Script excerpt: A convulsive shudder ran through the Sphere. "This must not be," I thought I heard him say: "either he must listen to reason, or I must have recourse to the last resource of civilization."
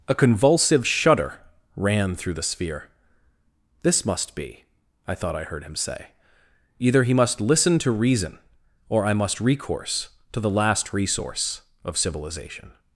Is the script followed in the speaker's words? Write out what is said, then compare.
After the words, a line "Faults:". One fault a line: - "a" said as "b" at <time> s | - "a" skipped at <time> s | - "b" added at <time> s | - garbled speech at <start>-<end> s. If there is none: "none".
A convulsive shudder ran through the Sphere. "This must be," I thought I heard him say: "either he must listen to reason, or I must recourse to the last resource of civilization."
Faults:
- "not" skipped at 4.3 s
- "have" skipped at 9.4 s